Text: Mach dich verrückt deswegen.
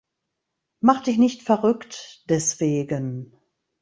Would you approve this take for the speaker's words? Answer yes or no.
no